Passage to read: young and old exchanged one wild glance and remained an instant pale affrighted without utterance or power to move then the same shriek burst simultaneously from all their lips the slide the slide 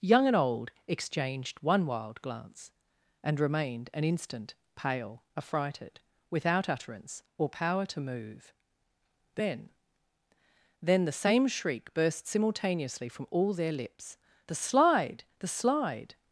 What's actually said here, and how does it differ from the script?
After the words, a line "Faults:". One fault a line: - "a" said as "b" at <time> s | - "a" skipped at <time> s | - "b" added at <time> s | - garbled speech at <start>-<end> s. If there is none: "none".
young and old exchanged one wild glance and remained an instant pale affrighted without utterance or power to move then then the same shriek burst simultaneously from all their lips the slide the slide
Faults:
- "then" added at 10.8 s